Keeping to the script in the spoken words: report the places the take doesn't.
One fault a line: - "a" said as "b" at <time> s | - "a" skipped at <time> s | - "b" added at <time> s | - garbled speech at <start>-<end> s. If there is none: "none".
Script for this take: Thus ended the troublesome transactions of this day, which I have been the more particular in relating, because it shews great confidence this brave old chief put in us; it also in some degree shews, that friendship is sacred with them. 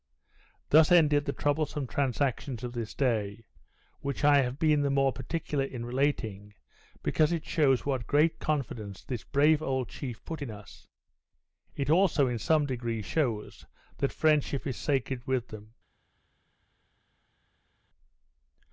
- "what" added at 7.8 s